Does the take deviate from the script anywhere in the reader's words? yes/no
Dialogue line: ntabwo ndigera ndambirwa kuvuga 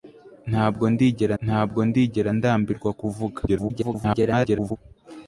yes